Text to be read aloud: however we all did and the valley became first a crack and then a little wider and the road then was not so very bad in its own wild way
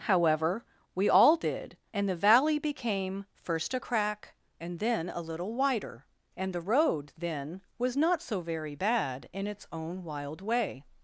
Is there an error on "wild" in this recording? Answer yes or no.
no